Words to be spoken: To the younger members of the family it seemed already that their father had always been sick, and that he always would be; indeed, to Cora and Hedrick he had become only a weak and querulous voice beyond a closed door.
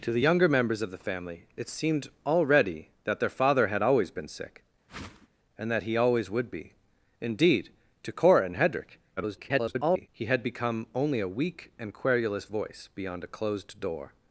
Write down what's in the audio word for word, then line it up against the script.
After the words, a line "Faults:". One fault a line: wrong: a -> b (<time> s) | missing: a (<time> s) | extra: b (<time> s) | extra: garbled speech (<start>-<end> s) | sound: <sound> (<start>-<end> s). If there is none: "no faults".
To the younger members of the family it seemed already that their father had always been sick, and that he always would be; indeed, to Cora and Hedrick [garbled] he had become only a weak and querulous voice beyond a closed door.
Faults:
sound: whoosh (4.9-5.3 s)
extra: garbled speech (9.2-10.1 s)